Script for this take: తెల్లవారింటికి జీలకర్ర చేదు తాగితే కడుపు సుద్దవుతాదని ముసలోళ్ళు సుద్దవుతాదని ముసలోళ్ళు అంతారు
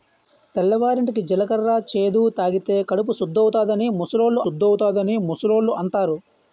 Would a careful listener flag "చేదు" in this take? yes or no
no